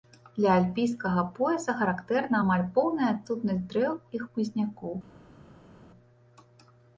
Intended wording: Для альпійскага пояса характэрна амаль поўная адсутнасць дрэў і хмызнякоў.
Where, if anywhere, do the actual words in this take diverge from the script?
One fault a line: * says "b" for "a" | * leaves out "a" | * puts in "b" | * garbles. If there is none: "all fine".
all fine